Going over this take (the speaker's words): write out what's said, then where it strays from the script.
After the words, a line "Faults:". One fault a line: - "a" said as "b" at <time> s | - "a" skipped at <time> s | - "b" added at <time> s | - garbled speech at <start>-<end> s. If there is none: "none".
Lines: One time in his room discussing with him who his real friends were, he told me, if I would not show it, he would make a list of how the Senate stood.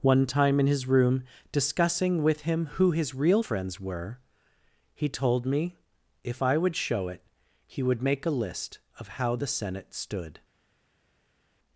One time in his room discussing with him who his real friends were, he told me, if I would show it, he would make a list of how the Senate stood.
Faults:
- "not" skipped at 6.8 s